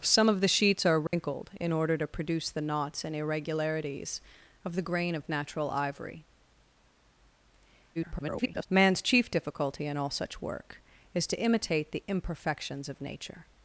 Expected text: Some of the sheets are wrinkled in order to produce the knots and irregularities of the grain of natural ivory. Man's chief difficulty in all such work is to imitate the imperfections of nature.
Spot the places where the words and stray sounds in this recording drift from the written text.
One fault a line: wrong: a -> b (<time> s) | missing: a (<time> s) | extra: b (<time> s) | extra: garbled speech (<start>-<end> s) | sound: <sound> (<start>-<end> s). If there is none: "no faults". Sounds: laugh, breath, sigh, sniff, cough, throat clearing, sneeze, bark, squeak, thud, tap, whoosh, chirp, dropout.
sound: dropout (1.1-1.1 s)
extra: garbled speech (8.0-8.7 s)